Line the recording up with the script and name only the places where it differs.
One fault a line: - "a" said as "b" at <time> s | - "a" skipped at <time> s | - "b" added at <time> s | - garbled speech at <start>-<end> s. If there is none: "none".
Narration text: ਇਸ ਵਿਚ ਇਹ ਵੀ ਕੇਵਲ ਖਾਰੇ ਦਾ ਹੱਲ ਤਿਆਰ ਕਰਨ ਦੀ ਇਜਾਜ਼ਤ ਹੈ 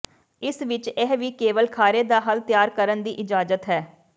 none